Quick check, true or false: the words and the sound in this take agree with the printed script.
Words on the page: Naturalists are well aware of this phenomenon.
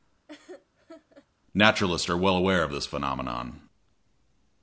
false